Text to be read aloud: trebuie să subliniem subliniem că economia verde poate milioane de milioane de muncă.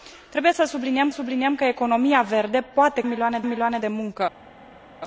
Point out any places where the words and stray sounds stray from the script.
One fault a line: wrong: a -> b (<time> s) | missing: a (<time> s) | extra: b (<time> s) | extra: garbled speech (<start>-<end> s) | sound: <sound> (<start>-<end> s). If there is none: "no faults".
no faults